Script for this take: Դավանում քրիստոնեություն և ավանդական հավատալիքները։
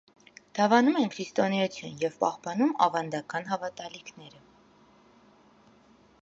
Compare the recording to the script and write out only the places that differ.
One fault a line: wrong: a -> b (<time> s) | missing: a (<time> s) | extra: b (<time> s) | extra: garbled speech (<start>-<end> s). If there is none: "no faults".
extra: են (1.0 s)
extra: պահպանում (2.2 s)